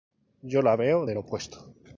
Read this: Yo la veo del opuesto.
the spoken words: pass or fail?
pass